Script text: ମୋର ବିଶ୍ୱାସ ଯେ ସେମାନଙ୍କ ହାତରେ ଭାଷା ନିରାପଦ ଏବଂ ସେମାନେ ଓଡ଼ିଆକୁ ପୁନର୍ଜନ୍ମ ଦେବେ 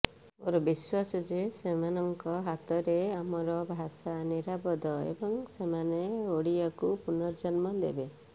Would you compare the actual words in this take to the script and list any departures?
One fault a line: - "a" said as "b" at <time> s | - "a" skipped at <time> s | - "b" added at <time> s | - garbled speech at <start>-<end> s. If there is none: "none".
- "ଆମର" added at 3.1 s